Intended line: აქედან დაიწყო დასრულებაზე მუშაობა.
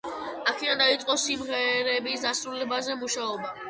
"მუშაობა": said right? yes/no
yes